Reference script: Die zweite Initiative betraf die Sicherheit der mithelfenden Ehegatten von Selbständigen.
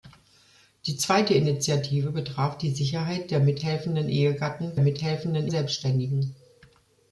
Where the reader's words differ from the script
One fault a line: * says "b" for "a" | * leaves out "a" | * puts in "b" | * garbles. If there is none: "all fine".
* says "mithelfenden" for "von"